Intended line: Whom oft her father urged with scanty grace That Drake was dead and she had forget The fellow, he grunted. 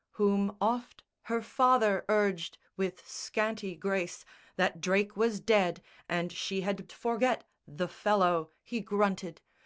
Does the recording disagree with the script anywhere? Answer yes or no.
no